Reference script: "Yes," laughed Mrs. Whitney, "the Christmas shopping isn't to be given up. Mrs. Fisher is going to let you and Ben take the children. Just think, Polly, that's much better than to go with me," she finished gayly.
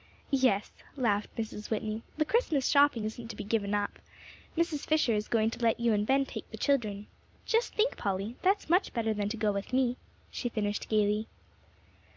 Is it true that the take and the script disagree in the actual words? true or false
false